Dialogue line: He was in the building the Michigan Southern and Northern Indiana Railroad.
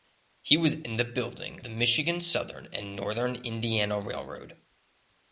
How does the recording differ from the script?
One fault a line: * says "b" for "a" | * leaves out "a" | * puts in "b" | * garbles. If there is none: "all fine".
all fine